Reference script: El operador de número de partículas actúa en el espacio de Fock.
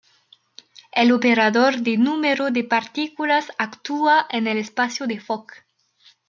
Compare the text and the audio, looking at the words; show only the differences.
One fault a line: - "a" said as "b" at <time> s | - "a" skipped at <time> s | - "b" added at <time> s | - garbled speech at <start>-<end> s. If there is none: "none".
none